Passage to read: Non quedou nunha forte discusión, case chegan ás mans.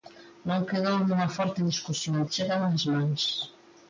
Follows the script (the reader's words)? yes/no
no